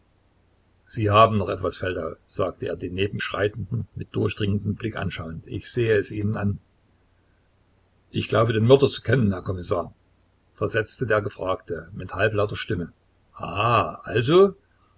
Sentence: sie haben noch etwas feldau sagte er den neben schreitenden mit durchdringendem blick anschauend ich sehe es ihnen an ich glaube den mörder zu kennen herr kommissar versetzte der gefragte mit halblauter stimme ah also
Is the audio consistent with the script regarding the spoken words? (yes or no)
yes